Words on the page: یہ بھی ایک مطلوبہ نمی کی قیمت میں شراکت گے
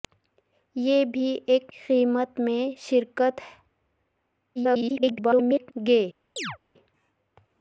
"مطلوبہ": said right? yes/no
no